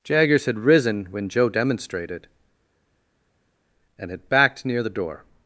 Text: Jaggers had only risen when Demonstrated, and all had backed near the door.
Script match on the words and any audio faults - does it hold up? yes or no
no